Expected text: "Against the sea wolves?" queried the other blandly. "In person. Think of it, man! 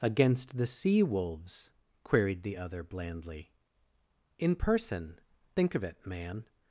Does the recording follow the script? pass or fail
pass